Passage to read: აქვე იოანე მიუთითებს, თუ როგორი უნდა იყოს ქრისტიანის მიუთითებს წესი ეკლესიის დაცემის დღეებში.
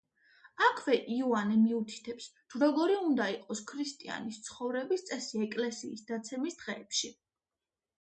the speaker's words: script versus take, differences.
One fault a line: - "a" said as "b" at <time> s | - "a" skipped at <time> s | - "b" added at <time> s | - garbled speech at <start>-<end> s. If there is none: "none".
- "მიუთითებს" said as "ცხოვრების" at 4.5 s